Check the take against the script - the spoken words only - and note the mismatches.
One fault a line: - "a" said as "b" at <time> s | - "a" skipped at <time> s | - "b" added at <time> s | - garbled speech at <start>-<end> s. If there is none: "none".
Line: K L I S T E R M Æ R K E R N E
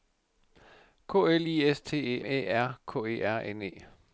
- "R M" skipped at 2.2 s